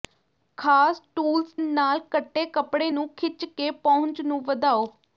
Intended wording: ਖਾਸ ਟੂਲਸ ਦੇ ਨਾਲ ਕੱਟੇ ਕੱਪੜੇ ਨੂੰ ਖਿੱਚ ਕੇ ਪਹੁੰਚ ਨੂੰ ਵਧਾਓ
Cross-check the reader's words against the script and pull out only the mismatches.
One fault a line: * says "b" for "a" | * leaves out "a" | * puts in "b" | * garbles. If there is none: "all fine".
* leaves out "ਦੇ"